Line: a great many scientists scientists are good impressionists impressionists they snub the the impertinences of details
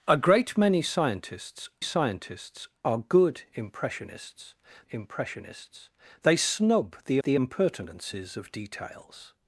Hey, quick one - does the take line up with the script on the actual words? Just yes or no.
yes